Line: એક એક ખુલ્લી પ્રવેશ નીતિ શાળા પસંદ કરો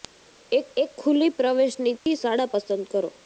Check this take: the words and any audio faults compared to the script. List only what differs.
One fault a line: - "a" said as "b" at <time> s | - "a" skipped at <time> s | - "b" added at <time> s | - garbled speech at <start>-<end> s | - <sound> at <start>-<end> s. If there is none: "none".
- dropout at 2.0-2.1 s